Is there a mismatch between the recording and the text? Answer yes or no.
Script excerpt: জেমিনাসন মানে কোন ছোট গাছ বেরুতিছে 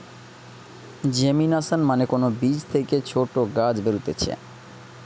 yes